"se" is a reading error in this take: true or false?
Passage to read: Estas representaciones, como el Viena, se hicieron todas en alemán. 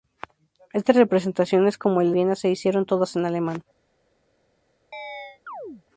false